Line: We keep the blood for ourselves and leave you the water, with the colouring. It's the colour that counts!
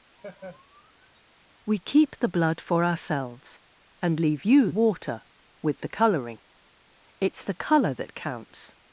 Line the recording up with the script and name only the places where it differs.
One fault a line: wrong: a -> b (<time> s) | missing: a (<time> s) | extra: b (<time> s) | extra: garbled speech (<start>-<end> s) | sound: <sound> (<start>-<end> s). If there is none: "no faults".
sound: laugh (0.2-1.2 s)
missing: the (4.7 s)